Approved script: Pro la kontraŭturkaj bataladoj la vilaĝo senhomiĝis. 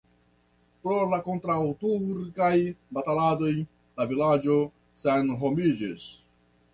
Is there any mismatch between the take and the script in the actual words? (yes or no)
no